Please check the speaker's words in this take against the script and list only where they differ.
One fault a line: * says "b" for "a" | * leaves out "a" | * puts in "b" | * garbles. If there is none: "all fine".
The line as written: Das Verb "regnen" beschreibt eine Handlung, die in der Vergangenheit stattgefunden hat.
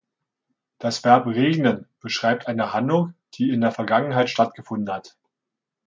all fine